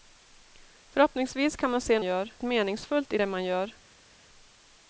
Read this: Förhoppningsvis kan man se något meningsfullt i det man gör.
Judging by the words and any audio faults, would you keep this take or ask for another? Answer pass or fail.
fail